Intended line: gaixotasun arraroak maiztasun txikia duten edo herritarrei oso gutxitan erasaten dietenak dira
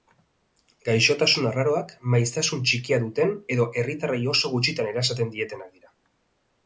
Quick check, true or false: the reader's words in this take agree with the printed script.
true